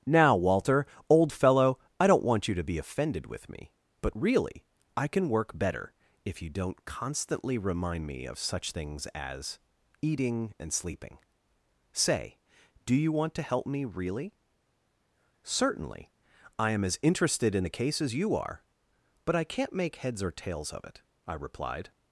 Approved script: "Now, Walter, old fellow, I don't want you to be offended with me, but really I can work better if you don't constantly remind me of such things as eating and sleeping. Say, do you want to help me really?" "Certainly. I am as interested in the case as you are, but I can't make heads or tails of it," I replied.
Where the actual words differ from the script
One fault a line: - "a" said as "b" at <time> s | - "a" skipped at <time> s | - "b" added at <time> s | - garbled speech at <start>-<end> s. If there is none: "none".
none